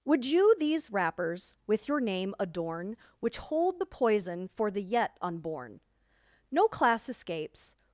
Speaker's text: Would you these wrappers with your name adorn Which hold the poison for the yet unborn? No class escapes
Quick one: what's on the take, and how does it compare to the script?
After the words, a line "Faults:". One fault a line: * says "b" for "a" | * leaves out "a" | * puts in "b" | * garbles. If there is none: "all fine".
Would you these wrappers with your name adorn Which hold the poison for the yet unborn? No class escapes
Faults:
all fine